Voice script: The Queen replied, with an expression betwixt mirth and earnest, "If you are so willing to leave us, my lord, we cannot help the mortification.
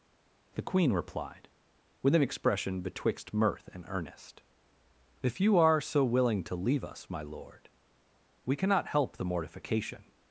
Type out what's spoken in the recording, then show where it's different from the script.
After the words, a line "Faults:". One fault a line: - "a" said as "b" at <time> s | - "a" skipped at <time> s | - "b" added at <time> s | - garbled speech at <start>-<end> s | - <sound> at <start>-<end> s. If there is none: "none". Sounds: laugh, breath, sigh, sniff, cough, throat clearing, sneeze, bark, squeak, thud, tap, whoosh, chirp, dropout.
The Queen replied, with an expression betwixt mirth and earnest, "If you are so willing to leave us, my lord, we cannot help the mortification.
Faults:
none